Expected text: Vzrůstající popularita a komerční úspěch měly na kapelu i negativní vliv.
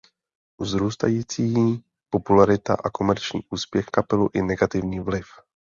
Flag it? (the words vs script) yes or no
yes